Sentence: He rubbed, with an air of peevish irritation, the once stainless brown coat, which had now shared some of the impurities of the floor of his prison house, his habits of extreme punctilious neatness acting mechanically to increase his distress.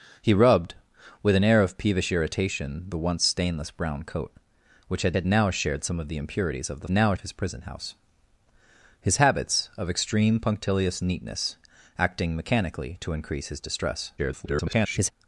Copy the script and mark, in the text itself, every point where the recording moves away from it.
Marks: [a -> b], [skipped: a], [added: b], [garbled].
He rubbed, with an air of peevish irritation, the once stainless brown coat, which had [added: had] now shared some of the impurities of the [floor -> now] of his prison house, his habits of extreme punctilious neatness acting mechanically to increase his distress. [garbled]